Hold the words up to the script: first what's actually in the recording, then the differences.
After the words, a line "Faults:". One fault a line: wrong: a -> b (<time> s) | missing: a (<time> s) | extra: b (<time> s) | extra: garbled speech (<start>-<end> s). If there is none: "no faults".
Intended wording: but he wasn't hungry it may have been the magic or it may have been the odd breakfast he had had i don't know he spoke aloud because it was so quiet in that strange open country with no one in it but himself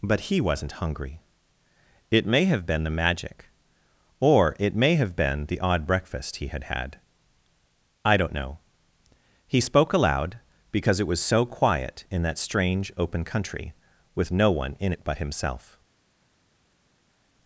but he wasn't hungry it may have been the magic or it may have been the odd breakfast he had had i don't know he spoke aloud because it was so quiet in that strange open country with no one in it but himself
Faults:
no faults